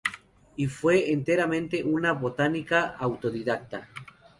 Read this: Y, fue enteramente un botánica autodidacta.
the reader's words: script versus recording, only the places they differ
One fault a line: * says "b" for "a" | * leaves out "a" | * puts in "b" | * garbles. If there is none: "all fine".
* says "una" for "un"